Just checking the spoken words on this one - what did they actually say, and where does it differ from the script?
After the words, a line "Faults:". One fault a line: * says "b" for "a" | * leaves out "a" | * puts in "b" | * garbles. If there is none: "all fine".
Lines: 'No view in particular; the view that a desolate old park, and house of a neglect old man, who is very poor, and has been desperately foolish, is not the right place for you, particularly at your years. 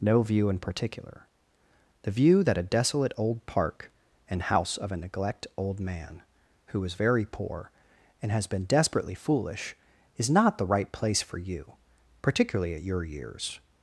'No view in particular; the view that a desolate old park, and house of a neglect old man, who is very poor, and has been desperately foolish, is not the right place for you, particularly at your years.
Faults:
all fine